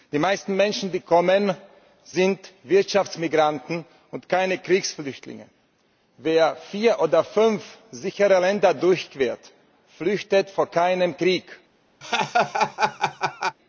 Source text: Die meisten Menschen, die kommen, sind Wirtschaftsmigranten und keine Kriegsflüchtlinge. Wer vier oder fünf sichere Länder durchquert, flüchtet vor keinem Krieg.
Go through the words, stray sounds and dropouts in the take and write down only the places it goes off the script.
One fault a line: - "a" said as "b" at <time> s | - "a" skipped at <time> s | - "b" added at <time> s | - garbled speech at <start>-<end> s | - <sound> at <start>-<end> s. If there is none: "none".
- laugh at 12.0-13.6 s